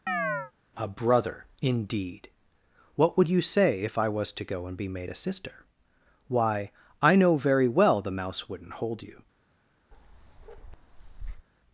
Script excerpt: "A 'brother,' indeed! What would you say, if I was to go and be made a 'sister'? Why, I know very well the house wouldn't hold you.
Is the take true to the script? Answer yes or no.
no